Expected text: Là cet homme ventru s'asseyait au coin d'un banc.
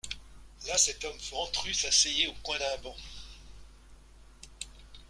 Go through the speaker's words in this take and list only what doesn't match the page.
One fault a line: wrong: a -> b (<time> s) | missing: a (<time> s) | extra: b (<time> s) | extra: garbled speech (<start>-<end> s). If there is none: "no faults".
no faults